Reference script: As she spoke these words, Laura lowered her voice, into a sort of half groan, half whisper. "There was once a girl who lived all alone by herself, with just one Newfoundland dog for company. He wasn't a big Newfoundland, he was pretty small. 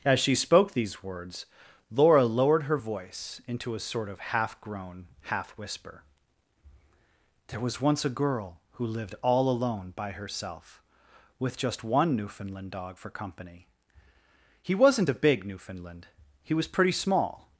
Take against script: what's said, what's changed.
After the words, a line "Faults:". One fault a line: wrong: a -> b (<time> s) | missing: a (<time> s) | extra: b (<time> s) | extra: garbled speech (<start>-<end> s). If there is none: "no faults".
As she spoke these words, Laura lowered her voice, into a sort of half groan, half whisper. "There was once a girl who lived all alone by herself, with just one Newfoundland dog for company. He wasn't a big Newfoundland, he was pretty small.
Faults:
no faults